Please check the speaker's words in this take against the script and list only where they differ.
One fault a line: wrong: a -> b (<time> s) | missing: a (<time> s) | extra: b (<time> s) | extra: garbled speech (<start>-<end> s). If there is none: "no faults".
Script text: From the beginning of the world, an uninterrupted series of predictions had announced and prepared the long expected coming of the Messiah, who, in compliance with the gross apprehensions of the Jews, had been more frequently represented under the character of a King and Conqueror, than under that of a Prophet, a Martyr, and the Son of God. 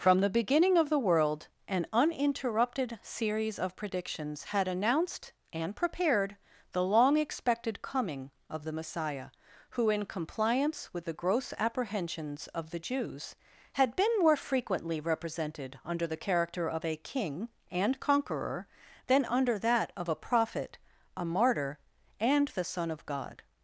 no faults